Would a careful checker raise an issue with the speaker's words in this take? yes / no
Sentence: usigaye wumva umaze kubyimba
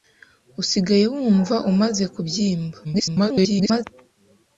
yes